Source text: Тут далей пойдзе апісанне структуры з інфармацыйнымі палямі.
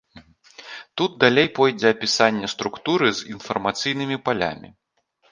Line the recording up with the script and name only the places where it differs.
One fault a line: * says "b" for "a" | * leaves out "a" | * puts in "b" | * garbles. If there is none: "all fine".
all fine